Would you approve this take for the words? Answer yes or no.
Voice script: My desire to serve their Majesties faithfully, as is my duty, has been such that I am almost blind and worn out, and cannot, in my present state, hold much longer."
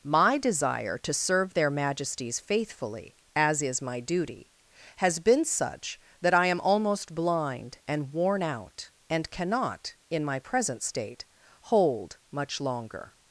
yes